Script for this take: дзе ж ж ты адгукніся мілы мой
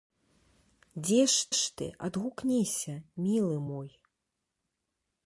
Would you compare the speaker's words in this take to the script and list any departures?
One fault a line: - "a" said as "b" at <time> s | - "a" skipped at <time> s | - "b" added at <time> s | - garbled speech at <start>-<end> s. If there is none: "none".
none